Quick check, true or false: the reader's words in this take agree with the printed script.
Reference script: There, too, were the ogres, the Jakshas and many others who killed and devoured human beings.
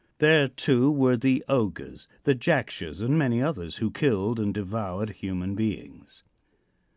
true